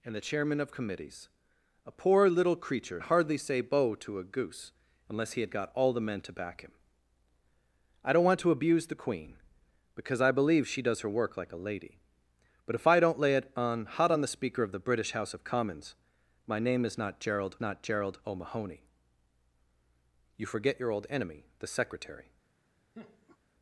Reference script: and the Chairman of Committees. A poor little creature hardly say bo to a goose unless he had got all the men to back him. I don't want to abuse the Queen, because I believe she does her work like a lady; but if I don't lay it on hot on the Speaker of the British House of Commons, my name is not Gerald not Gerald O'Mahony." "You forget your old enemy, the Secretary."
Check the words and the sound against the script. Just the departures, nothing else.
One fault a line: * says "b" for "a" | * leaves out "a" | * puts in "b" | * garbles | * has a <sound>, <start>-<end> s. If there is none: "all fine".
* has a laugh, 22.9-23.4 s